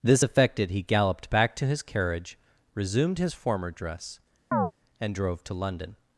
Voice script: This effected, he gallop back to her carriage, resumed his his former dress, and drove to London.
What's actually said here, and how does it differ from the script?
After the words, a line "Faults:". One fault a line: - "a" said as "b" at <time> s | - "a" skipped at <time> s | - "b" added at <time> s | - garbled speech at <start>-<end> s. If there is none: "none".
This effected, he galloped back to his carriage, resumed his former dress, and drove to London.
Faults:
- "gallop" said as "galloped" at 0.8 s
- "her" said as "his" at 1.6 s
- "his" skipped at 3.3 s